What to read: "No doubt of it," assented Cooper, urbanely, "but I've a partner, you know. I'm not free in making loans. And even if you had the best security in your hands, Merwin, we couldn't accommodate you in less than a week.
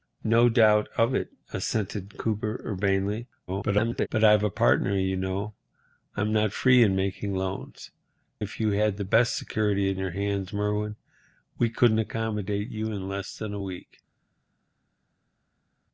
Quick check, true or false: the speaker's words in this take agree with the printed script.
false